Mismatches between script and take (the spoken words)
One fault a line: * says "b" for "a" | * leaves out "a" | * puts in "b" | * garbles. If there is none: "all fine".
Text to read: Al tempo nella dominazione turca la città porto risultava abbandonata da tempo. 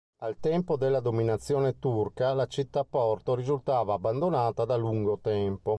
* says "della" for "nella"
* puts in "lungo"